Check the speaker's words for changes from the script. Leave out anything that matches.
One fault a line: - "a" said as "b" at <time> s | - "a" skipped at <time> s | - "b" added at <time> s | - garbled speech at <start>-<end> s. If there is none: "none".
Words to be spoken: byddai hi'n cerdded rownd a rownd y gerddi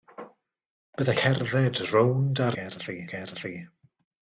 - "hi'n" skipped at 1.1 s
- "rownd" said as "gerddi" at 2.6 s